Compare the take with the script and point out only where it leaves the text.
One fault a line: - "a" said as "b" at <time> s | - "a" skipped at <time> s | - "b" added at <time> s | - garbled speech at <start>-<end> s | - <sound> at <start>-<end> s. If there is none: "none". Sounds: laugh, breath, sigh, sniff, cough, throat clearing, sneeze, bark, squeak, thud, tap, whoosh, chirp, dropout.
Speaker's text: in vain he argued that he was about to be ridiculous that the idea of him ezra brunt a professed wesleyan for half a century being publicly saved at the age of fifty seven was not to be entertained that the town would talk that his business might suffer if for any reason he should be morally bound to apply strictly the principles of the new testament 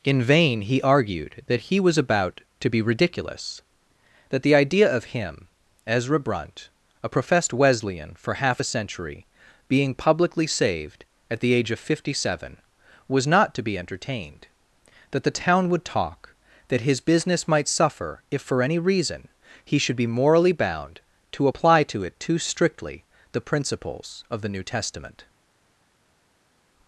- "to it too" added at 21.8 s